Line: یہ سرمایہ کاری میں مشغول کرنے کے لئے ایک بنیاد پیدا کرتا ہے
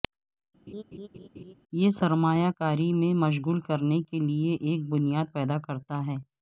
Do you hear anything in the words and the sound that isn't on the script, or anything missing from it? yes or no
yes